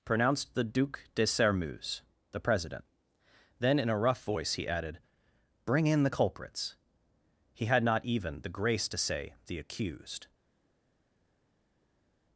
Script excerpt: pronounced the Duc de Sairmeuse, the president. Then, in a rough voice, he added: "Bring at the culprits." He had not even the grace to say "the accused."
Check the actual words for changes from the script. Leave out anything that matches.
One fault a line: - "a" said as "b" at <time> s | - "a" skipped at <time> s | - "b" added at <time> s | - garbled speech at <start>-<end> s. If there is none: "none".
- "at" said as "in" at 5.9 s